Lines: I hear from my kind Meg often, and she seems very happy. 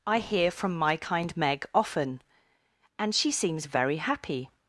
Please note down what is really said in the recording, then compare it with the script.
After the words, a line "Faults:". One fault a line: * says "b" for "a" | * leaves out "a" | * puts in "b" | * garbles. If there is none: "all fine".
I hear from my kind Meg often, and she seems very happy.
Faults:
all fine